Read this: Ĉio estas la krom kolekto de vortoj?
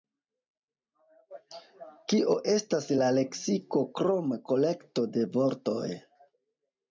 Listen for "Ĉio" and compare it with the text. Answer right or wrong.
wrong